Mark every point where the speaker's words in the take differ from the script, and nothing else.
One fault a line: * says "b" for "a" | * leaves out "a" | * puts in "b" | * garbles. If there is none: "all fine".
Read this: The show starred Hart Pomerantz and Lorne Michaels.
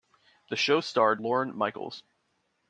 * leaves out "Hart Pomerantz and"